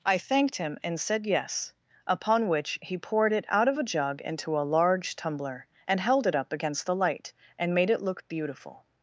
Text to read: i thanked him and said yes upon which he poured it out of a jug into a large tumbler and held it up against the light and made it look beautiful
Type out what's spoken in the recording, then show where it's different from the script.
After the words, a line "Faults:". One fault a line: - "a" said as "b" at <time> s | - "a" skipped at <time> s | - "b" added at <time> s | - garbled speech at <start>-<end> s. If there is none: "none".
i thanked him and said yes upon which he poured it out of a jug into a large tumbler and held it up against the light and made it look beautiful
Faults:
none